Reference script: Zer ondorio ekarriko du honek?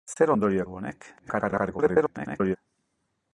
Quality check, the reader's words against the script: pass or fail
fail